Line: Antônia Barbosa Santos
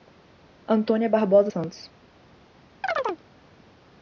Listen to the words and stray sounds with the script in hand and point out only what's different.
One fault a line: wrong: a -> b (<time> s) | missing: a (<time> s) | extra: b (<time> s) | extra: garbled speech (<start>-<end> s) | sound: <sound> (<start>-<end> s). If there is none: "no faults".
sound: chirp (2.8-3.2 s)